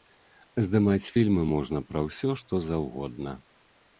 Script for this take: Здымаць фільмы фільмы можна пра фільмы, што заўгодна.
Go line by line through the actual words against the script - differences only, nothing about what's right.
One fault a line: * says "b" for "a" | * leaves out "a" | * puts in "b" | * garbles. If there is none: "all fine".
* leaves out "фільмы"
* says "ўсё" for "фільмы"